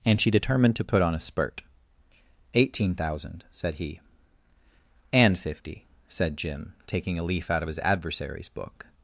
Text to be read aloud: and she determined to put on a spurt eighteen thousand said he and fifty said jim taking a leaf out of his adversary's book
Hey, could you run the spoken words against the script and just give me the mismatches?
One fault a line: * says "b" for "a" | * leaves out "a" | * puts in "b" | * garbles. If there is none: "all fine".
all fine